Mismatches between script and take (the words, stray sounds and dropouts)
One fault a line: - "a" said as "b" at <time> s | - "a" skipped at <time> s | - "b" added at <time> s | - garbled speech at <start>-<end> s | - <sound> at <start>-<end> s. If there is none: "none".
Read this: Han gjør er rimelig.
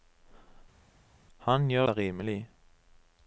none